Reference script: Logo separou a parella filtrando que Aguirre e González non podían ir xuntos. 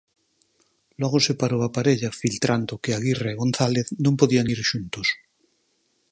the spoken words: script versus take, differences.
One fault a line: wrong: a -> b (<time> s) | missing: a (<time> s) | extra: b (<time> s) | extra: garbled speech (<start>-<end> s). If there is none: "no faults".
no faults